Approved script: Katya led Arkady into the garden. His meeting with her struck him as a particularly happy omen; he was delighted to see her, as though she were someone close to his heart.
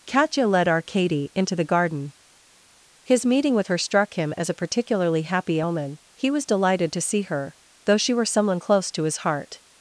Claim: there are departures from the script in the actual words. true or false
true